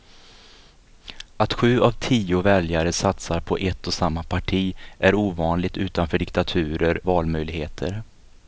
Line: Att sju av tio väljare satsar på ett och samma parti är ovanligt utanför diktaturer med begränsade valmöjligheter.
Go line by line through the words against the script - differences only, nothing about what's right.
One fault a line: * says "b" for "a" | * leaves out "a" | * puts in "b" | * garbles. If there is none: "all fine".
* leaves out "med begränsade"